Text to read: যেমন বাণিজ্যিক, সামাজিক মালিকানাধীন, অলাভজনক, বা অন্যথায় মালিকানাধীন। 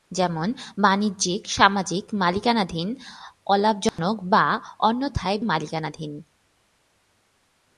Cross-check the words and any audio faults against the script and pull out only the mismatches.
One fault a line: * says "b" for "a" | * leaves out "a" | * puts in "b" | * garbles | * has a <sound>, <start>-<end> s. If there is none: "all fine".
* has a dropout, 3.9-4.0 s